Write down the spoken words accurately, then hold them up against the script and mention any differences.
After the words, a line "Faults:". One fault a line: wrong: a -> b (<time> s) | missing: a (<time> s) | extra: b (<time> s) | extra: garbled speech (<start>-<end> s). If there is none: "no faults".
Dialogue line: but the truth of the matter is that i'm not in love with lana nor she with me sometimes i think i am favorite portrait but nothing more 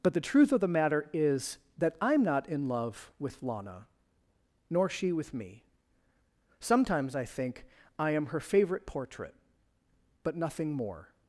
but the truth of the matter is that i'm not in love with lana nor she with me sometimes i think i am her favorite portrait but nothing more
Faults:
extra: her (8.3 s)